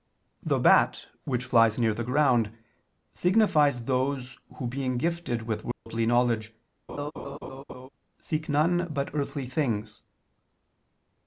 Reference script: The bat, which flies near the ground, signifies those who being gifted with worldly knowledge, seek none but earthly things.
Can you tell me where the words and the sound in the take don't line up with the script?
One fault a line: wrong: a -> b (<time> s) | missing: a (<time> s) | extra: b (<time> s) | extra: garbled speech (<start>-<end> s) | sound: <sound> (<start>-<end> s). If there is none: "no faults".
sound: dropout (5.7-5.9 s)
sound: laugh (6.9-7.9 s)